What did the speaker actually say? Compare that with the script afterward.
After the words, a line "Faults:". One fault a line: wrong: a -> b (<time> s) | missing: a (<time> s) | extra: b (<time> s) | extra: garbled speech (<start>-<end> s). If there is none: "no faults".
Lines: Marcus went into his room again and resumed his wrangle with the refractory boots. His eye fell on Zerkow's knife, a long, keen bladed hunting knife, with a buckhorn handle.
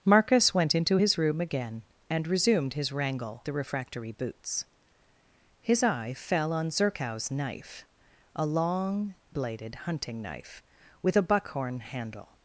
Marcus went into his room again and resumed his wrangle the refractory boots. His eye fell on Zerkow's knife, a long, bladed hunting knife, with a buckhorn handle.
Faults:
missing: with (3.4 s)
missing: keen (9.1 s)